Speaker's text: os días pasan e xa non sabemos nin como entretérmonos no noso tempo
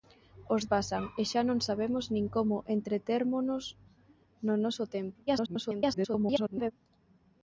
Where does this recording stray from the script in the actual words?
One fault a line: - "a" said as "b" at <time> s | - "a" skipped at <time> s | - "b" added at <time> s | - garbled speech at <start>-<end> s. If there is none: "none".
- "días" skipped at 0.6 s
- garbled speech at 5.3-6.7 s